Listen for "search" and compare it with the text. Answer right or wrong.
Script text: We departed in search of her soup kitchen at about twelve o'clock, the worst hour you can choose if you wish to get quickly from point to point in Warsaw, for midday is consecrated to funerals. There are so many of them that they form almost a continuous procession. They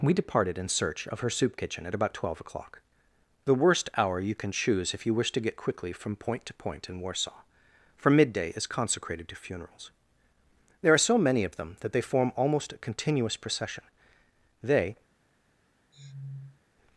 right